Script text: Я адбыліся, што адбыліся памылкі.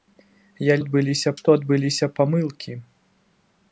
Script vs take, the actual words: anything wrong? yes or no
no